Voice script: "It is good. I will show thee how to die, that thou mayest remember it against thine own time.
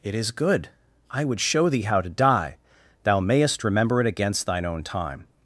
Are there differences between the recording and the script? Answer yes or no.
yes